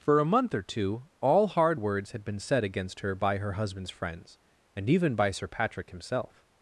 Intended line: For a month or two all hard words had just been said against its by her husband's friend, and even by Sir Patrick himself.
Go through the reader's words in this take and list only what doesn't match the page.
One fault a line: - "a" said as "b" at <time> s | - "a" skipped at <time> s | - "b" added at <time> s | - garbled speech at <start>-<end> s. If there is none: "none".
- "just" skipped at 2.2 s
- "its" said as "her" at 3.0 s
- "friend" said as "friends" at 3.9 s